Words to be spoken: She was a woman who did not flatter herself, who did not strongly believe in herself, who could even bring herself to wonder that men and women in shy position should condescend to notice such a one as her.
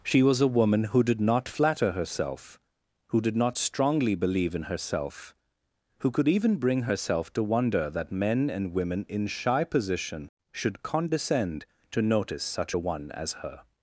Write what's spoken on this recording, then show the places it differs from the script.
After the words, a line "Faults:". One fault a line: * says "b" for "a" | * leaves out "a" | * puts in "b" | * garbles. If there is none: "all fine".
She was a woman who did not flatter herself, who did not strongly believe in herself, who could even bring herself to wonder that men and women in shy position should condescend to notice such a one as her.
Faults:
all fine